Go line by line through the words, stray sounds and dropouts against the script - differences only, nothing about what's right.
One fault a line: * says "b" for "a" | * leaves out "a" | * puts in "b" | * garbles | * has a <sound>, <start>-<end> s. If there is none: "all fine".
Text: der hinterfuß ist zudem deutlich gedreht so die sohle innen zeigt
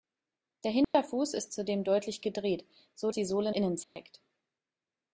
* has a dropout, 0.8-0.9 s
* has a dropout, 3.8-4.0 s